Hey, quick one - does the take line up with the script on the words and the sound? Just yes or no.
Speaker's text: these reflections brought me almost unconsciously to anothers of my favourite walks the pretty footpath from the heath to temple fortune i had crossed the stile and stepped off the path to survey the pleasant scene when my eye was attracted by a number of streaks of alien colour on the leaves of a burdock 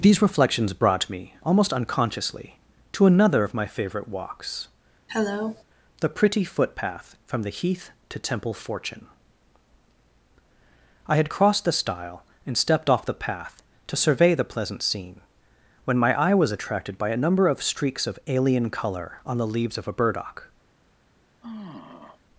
no